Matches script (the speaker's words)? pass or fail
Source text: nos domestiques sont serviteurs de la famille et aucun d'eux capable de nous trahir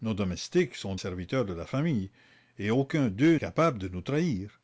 pass